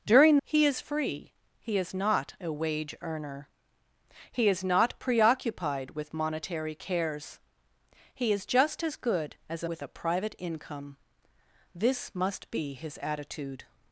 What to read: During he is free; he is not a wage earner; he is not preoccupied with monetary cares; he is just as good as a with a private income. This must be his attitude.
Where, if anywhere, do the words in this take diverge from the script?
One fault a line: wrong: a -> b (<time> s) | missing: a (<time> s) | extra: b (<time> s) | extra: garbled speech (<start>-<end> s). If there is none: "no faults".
no faults